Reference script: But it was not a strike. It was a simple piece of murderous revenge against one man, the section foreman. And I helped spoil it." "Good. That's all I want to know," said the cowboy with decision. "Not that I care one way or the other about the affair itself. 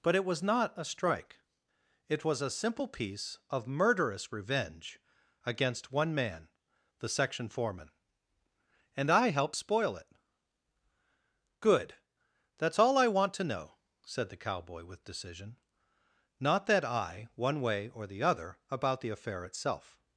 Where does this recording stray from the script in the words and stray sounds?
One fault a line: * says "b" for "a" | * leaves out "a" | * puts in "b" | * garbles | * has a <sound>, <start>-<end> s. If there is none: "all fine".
* leaves out "care"